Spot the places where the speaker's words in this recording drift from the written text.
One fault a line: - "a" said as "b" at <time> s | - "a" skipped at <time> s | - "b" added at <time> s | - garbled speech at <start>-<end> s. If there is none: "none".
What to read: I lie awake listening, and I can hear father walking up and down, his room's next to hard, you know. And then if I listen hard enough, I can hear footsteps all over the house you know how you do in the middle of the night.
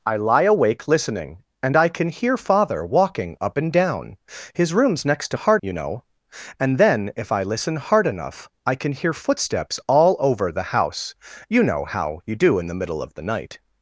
none